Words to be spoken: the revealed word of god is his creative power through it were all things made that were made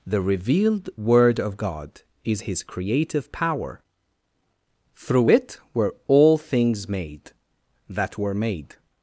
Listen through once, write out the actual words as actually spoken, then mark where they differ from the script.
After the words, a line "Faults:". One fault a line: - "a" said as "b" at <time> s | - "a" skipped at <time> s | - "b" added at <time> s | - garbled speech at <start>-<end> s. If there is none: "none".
the revealed word of god is his creative power through it were all things made that were made
Faults:
none